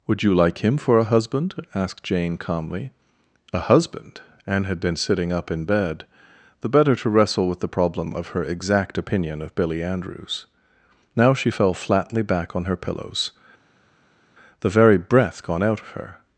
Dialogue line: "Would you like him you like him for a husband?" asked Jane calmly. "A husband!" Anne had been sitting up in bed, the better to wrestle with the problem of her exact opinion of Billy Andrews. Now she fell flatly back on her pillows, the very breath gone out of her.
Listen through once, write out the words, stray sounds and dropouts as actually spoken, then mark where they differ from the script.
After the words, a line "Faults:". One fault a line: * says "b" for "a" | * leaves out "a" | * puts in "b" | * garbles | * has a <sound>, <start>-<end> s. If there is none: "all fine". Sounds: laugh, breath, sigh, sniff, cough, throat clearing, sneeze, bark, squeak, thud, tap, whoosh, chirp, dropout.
"Would you like him for a husband?" asked Jane calmly. "A husband!" Anne had been sitting up in bed, the better to wrestle with the problem of her exact opinion of Billy Andrews. Now she fell flatly back on her pillows, the very breath gone out of her.
Faults:
* leaves out "you like him"